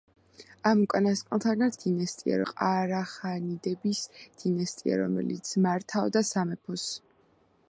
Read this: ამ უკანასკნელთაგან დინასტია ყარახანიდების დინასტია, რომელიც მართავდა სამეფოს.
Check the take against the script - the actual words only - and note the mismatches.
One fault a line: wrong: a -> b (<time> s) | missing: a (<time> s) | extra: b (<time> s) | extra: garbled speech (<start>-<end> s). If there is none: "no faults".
no faults